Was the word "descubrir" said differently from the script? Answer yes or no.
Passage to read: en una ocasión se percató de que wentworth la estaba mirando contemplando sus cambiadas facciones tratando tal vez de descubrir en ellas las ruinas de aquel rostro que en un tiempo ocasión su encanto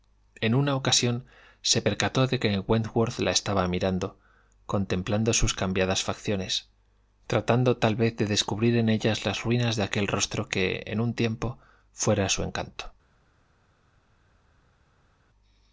no